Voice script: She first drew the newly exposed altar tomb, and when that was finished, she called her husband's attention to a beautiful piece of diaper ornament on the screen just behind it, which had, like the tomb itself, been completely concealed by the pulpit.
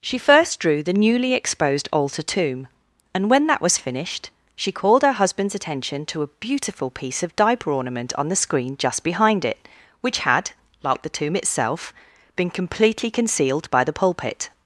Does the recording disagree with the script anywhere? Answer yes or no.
no